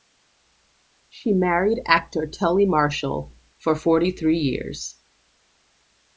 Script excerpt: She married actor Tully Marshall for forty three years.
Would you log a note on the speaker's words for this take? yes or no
no